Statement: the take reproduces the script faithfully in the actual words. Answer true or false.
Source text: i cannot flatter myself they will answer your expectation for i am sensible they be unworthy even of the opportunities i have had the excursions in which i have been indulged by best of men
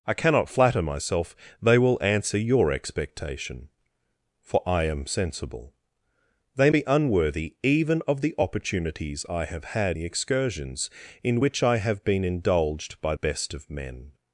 true